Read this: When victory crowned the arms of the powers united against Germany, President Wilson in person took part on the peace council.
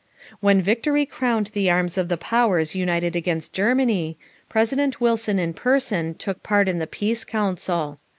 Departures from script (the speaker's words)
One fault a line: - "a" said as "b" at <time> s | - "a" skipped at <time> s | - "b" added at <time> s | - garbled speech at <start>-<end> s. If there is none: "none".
- "on" said as "in" at 6.7 s